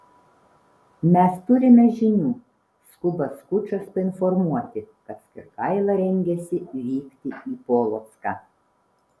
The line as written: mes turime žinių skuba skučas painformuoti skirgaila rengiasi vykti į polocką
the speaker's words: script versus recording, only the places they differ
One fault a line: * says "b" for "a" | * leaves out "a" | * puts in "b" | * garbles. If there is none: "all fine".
* puts in "kad"